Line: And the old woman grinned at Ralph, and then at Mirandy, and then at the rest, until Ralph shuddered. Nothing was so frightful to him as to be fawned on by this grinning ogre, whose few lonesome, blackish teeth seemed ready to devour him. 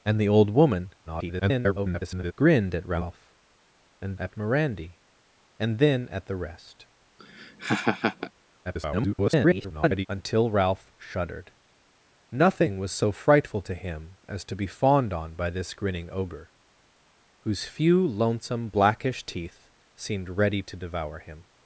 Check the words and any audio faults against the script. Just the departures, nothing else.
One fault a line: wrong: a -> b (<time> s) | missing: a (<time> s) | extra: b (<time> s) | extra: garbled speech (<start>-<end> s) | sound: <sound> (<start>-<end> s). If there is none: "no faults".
extra: garbled speech (1.1-2.3 s)
missing: then (4.2 s)
sound: laugh (7.2-8.3 s)
extra: garbled speech (8.6-10.1 s)